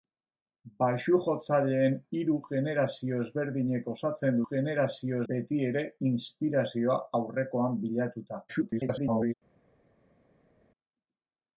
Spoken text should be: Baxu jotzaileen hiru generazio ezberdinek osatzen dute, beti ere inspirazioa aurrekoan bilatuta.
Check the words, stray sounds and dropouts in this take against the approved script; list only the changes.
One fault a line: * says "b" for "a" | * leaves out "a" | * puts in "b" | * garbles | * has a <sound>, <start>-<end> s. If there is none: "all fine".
* says "generazio" for "dute"
* garbles